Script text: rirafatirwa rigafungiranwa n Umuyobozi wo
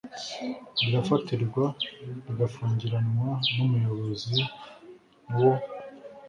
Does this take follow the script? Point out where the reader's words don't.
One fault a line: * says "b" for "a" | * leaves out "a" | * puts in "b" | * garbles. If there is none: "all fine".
all fine